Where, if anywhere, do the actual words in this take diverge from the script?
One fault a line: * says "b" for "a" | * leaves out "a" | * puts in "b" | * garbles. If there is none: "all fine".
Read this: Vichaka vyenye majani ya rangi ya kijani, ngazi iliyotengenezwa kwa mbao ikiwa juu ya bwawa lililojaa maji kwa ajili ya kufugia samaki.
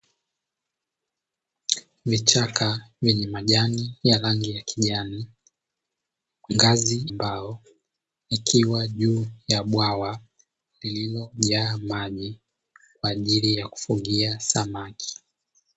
* leaves out "iliyotengenezwa kwa"